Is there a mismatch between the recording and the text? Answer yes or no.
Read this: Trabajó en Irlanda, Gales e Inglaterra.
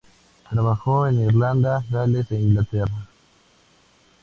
no